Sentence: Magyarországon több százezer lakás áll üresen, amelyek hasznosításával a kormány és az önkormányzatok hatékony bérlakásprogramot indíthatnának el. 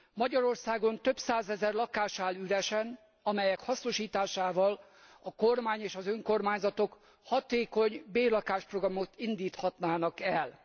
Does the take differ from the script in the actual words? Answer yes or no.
no